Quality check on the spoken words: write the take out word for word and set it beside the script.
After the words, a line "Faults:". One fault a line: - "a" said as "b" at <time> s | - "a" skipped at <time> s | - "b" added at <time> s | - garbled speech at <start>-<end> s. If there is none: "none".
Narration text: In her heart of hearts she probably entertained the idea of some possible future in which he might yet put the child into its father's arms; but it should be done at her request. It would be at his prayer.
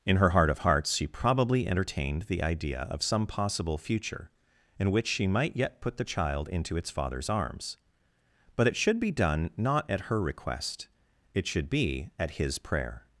In her heart of hearts she probably entertained the idea of some possible future in which she might yet put the child into its father's arms; but it should be done not at her request. It should be at his prayer.
Faults:
- "he" said as "she" at 5.1 s
- "not" added at 9.6 s
- "would" said as "should" at 11.4 s